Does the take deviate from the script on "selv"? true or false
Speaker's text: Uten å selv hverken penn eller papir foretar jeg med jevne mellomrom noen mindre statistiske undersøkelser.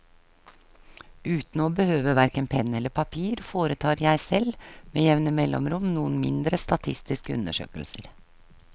true